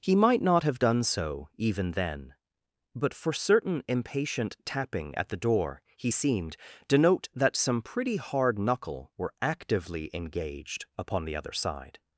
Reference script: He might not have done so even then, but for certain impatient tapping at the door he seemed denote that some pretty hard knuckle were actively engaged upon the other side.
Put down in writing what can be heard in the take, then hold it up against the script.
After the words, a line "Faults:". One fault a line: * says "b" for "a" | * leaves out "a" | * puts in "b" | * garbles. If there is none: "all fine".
He might not have done so even then, but for certain impatient tapping at the door he seemed denote that some pretty hard knuckle were actively engaged upon the other side.
Faults:
all fine